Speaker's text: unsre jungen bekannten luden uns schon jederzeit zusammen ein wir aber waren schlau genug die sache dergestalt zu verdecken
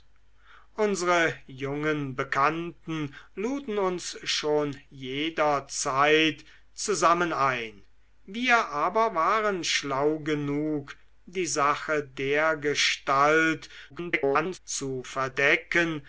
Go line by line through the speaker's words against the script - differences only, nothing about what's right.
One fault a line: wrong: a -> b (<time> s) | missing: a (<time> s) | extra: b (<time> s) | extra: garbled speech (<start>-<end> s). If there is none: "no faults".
extra: garbled speech (13.9-14.6 s)